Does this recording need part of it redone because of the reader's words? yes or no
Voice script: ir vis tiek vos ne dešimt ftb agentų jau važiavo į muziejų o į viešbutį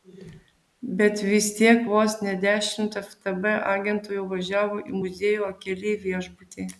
yes